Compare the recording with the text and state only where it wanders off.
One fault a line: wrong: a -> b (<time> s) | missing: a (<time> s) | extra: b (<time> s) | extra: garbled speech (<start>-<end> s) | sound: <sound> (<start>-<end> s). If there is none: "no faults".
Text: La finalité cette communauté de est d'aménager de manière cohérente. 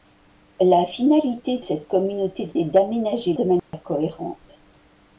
sound: dropout (3.6-3.7 s)